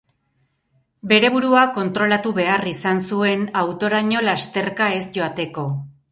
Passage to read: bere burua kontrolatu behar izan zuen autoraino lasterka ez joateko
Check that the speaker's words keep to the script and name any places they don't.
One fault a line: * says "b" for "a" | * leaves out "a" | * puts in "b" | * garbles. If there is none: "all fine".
all fine